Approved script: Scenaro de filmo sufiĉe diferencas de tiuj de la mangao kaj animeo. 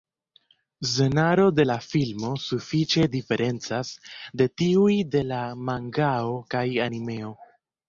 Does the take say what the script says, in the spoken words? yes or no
no